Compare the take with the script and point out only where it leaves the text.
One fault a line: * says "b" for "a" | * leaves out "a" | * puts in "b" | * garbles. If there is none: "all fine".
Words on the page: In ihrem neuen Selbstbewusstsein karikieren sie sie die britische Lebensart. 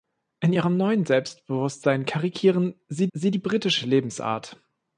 all fine